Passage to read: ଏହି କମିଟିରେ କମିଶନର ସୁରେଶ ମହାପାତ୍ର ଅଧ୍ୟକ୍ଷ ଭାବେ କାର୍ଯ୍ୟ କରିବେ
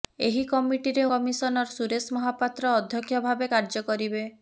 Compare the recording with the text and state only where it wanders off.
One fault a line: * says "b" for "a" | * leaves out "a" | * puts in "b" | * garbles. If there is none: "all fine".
all fine